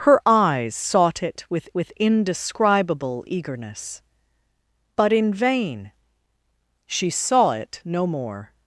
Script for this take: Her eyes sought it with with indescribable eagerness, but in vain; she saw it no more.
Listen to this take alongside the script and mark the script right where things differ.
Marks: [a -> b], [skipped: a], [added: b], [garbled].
Her eyes sought it with with indescribable eagerness, but in vain; she saw it no more.